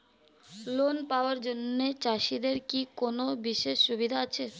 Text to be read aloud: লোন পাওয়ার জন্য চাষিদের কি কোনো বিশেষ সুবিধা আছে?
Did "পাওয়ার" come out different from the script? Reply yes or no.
no